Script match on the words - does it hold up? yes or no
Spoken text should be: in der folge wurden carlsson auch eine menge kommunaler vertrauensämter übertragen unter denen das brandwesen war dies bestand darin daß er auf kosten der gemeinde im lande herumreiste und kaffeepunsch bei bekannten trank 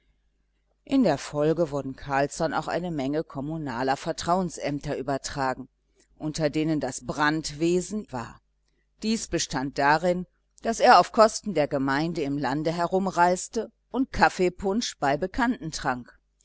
yes